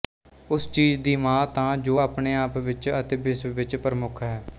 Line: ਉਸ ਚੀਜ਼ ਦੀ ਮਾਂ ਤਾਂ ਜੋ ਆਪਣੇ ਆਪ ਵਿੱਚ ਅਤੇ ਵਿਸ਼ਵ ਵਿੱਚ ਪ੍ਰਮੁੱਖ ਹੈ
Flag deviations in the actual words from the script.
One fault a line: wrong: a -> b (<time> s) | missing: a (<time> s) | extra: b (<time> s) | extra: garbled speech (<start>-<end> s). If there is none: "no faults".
no faults